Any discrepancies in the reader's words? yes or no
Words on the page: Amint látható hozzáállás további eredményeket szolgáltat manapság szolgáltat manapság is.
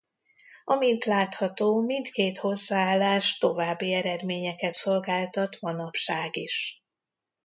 yes